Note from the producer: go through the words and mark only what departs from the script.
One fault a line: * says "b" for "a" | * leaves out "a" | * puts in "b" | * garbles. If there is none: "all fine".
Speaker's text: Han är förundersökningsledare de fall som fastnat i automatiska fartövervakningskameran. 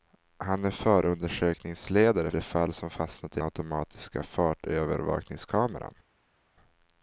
all fine